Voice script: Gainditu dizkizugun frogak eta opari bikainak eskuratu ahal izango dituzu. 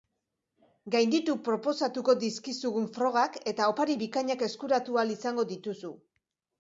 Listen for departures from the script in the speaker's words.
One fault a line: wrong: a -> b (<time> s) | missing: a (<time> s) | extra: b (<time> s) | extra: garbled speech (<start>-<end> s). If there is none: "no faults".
extra: proposatuko (1.5 s)